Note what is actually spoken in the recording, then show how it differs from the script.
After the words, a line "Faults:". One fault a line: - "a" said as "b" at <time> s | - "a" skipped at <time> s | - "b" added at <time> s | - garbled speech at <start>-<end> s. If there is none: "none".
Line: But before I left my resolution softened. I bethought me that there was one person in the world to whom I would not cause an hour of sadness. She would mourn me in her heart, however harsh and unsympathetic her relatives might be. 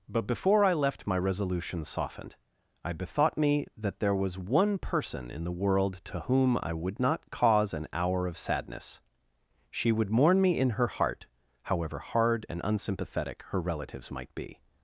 But before I left my resolution softened. I bethought me that there was one person in the world to whom I would not cause an hour of sadness. She would mourn me in her heart, however hard and unsympathetic her relatives might be.
Faults:
- "harsh" said as "hard" at 12.0 s